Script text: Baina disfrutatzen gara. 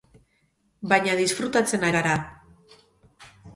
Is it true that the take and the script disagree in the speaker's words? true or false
false